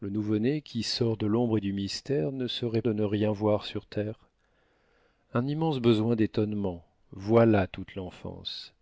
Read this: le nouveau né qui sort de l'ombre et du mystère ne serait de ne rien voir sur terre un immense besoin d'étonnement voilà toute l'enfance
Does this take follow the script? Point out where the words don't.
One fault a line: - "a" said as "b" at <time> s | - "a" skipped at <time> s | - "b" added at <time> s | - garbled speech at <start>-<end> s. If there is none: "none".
none